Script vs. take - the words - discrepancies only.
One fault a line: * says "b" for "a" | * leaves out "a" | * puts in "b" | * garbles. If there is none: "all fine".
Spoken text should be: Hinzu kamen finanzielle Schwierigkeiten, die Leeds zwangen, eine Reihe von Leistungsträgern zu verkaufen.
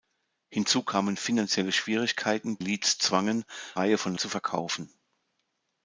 * leaves out "die"
* leaves out "eine"
* leaves out "Leistungsträgern"